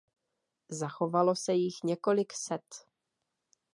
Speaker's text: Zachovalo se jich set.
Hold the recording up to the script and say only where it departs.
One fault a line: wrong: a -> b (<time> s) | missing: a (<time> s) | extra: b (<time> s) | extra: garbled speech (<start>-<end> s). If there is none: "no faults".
extra: několik (1.8 s)